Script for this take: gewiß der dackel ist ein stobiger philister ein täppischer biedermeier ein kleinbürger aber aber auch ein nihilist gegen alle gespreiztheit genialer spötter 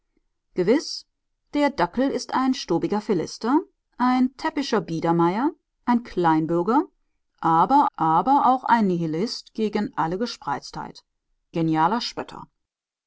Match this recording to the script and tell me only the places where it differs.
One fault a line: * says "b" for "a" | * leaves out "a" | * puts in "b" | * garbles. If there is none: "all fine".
all fine